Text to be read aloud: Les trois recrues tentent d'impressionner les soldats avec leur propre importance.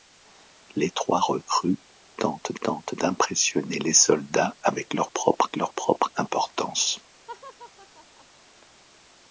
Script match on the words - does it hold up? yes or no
no